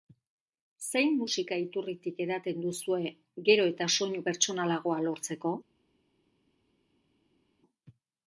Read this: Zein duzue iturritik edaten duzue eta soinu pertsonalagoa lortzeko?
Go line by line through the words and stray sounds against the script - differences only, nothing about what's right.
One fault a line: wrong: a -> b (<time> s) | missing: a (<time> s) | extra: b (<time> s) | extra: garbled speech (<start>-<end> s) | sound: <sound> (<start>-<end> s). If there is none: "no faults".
wrong: duzue -> musika (1.2 s)
extra: gero (3.5 s)